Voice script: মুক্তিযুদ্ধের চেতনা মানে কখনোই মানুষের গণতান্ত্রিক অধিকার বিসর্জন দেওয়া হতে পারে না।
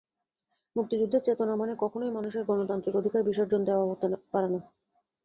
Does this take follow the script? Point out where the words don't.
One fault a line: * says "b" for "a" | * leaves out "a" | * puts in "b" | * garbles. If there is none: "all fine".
all fine